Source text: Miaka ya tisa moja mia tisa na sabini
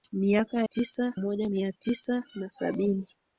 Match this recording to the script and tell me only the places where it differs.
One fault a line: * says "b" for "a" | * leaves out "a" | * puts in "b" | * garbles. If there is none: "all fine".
all fine